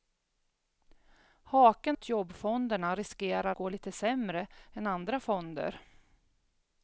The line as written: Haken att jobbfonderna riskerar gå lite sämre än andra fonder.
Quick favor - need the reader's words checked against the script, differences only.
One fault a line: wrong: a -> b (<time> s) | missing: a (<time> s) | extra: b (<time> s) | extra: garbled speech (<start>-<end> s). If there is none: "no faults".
no faults